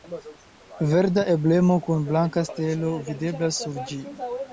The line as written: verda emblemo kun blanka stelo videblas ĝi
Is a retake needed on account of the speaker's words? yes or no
yes